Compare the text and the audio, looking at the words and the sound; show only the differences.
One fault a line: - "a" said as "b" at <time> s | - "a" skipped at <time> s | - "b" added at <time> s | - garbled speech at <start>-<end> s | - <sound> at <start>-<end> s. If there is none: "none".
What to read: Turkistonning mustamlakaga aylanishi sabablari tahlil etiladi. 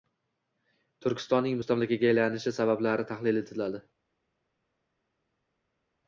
none